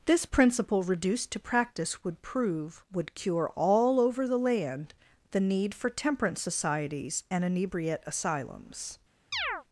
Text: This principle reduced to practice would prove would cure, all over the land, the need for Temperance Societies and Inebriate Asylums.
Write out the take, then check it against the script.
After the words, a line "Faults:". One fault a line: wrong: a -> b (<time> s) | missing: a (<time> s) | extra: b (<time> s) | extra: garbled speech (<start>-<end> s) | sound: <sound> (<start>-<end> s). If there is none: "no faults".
This principle reduced to practice would prove would cure, all over the land, the need for Temperance Societies and Inebriate Asylums.
Faults:
sound: chirp (9.3-9.6 s)